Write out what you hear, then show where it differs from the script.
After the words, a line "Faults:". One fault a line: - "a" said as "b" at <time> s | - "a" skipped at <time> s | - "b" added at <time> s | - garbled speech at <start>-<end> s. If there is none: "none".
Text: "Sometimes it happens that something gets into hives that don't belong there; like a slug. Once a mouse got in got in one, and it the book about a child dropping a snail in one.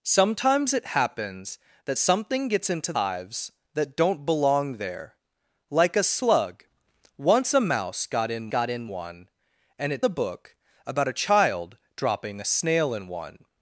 "Sometimes it happens that something gets into hives that don't belong there; like a slug. Once a mouse got in got in one, and it the book about a child dropping a snail in one.
Faults:
none